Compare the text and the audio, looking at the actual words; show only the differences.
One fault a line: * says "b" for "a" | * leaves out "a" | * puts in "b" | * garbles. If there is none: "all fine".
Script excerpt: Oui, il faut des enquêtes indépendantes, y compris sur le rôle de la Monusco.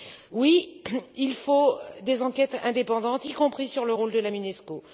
all fine